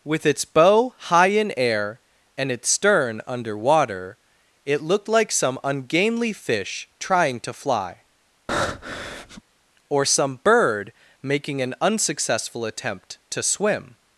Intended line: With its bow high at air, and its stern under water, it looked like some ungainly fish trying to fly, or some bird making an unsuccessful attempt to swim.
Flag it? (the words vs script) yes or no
yes